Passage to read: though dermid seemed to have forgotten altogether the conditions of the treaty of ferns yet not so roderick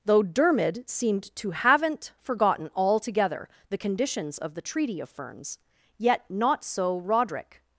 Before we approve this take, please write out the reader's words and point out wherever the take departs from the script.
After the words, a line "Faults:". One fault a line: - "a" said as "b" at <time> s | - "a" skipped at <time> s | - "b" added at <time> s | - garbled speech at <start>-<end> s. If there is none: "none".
though dermid seemed to haven't forgotten altogether the conditions of the treaty of ferns yet not so roderick
Faults:
- "have" said as "haven't" at 1.5 s